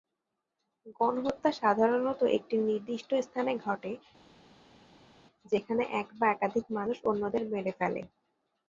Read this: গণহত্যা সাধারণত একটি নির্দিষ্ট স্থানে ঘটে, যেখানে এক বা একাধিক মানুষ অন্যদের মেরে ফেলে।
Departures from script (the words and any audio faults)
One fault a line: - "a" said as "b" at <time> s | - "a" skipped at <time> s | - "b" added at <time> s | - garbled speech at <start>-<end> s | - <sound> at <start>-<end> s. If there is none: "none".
none